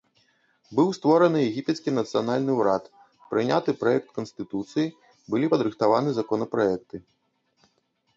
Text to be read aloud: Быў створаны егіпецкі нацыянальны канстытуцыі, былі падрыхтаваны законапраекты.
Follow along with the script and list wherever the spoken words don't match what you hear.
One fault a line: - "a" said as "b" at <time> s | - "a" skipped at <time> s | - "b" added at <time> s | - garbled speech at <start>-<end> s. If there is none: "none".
- "ўрад прыняты праект" added at 2.6 s